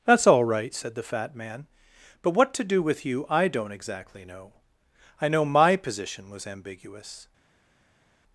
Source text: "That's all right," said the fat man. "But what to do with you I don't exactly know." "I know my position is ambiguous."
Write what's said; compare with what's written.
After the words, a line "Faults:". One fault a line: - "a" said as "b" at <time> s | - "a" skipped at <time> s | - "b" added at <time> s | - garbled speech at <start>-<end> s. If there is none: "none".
"That's all right," said the fat man. "But what to do with you I don't exactly know." "I know my position was ambiguous."
Faults:
- "is" said as "was" at 6.3 s